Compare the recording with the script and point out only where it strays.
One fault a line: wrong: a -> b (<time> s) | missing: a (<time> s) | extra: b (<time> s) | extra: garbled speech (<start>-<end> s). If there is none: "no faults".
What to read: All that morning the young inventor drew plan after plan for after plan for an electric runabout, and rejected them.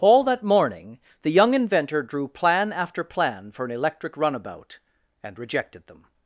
missing: after plan for (3.6 s)